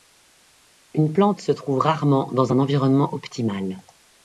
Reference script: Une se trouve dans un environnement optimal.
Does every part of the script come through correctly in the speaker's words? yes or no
no